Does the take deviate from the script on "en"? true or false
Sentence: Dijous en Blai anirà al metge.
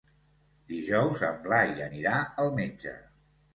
false